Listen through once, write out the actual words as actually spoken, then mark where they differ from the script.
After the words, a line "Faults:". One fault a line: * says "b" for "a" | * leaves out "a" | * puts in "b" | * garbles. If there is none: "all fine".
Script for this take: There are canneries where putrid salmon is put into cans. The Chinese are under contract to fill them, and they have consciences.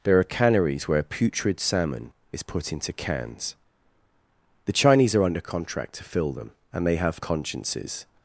There are canneries where putrid salmon is put into cans. The Chinese are under contract to fill them, and they have consciences.
Faults:
all fine